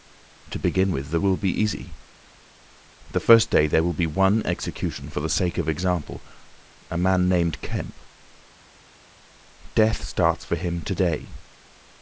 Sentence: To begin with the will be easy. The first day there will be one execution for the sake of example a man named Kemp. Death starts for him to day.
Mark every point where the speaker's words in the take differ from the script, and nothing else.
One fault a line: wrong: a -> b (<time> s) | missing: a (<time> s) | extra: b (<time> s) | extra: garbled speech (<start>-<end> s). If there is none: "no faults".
no faults